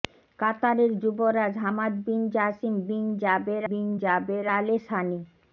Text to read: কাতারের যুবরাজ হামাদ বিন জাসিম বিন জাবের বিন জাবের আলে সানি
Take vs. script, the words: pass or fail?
pass